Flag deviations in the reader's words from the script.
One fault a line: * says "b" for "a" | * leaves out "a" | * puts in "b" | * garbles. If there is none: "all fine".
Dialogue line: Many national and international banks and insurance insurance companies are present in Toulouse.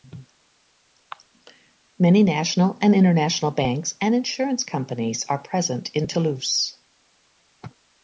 * leaves out "insurance"